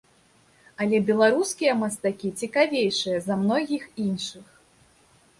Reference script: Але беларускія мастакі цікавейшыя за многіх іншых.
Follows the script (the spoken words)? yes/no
yes